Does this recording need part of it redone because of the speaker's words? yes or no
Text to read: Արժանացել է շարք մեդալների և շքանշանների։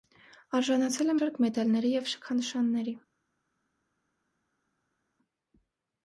no